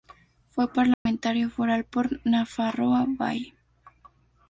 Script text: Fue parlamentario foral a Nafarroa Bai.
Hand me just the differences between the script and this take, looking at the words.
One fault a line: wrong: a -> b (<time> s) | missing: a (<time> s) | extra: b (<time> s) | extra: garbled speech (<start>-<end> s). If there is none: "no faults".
wrong: a -> por (1.9 s)